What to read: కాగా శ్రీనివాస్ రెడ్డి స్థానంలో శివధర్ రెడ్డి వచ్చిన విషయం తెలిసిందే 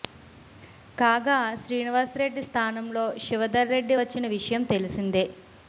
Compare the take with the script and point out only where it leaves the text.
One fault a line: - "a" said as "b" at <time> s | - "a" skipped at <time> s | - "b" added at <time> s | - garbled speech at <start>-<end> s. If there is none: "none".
none